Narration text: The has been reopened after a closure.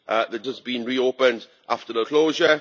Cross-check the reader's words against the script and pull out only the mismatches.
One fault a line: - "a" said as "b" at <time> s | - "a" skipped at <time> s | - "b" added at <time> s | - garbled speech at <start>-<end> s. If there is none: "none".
none